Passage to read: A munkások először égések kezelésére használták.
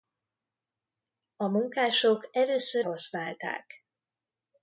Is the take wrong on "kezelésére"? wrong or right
wrong